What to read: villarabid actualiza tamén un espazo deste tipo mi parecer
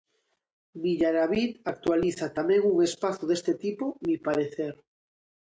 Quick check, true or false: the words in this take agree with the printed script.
true